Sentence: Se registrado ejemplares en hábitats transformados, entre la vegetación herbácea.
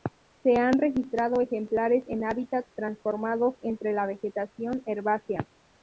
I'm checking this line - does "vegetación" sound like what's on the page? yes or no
yes